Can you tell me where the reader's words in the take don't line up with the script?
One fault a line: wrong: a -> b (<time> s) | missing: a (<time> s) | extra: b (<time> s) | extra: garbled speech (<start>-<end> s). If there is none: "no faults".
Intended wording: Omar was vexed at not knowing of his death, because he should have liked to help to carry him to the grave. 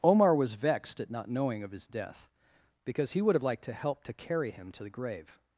wrong: should -> would (3.2 s)